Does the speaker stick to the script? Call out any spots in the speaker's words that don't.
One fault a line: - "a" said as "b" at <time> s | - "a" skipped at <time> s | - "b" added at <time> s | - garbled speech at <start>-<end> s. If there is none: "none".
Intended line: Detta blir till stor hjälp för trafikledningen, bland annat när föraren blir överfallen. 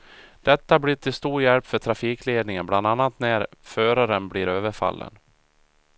none